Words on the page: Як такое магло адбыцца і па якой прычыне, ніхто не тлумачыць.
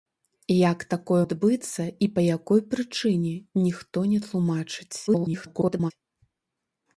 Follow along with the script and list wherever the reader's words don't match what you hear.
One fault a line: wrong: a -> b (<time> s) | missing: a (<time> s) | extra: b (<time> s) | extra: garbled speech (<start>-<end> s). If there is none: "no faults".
missing: магло (1.2 s)
extra: garbled speech (5.1-5.9 s)